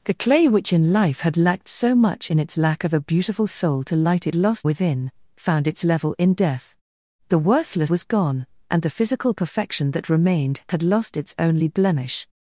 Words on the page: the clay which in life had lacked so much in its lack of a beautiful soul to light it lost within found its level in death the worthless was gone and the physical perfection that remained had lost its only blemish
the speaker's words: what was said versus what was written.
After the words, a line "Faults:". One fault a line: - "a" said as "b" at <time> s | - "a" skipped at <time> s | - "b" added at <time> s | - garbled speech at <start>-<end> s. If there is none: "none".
the clay which in life had lacked so much in its lack of a beautiful soul to light it lost within found its level in death the worthless was gone and the physical perfection that remained had lost its only blemish
Faults:
none